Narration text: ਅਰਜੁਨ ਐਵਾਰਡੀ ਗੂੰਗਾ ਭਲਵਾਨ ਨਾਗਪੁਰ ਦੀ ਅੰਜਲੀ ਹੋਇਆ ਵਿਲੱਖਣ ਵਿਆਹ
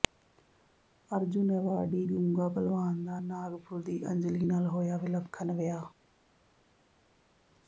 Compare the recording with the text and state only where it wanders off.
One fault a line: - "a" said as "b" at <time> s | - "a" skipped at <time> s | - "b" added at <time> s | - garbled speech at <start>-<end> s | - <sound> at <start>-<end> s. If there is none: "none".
- "ਦਾ" added at 3.0 s
- "ਨਾਲ" added at 4.4 s